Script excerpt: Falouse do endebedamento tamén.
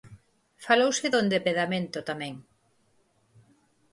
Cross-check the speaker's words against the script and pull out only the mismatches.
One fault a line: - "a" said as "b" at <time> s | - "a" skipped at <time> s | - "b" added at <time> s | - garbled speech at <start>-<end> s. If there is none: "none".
none